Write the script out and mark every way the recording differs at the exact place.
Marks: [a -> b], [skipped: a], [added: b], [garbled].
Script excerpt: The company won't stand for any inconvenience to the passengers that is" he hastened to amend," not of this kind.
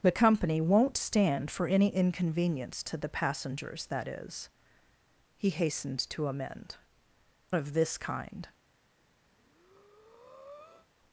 The company won't stand for any inconvenience to the passengers that is" he hastened to amend," [skipped: not] of this kind.